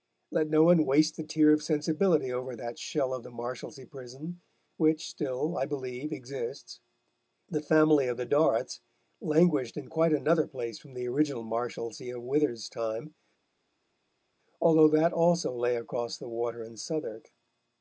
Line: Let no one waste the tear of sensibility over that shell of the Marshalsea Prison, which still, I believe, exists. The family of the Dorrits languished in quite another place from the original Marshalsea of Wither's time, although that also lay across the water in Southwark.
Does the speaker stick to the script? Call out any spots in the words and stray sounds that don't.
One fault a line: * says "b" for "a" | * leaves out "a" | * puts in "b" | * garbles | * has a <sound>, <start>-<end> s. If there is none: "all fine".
all fine